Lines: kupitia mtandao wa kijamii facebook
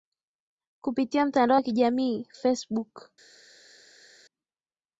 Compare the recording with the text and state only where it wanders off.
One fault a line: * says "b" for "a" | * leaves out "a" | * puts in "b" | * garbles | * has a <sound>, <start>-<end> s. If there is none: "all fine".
all fine